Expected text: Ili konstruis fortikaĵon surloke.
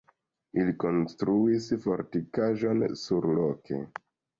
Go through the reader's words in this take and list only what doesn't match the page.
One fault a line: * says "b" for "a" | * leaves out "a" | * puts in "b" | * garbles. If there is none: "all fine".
all fine